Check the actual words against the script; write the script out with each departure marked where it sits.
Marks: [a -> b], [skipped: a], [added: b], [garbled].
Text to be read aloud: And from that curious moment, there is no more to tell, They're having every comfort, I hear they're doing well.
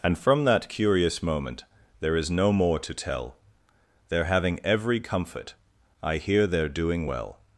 And from that curious moment, there is no more to tell, They're having every comfort, I hear they're doing well.